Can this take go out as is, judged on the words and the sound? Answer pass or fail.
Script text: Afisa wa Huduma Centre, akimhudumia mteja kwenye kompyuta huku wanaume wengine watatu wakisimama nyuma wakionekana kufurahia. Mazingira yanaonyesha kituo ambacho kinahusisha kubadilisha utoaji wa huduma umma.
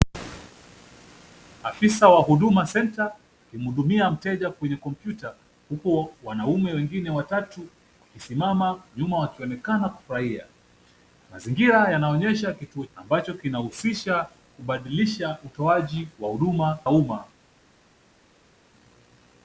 pass